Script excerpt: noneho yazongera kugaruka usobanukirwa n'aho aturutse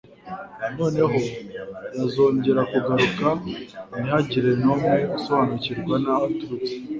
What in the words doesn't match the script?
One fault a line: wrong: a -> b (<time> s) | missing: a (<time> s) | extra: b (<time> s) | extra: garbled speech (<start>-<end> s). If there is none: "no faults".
extra: ntihagire n'umwe (4.0 s)